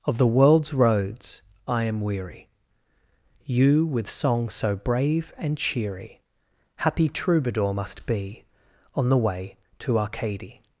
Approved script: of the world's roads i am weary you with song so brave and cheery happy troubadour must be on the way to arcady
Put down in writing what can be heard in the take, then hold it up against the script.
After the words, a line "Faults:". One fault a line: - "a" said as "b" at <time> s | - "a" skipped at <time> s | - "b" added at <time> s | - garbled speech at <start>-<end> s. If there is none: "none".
of the world's roads i am weary you with song so brave and cheery happy troubadour must be on the way to arcady
Faults:
none